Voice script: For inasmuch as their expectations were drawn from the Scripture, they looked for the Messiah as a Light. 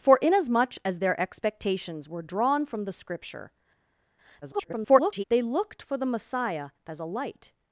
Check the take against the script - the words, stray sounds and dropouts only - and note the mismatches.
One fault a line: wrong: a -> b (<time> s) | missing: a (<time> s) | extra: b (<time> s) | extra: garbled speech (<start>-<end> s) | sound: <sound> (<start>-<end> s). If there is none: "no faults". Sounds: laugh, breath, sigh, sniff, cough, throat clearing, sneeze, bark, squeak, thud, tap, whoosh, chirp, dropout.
extra: garbled speech (4.4-5.2 s)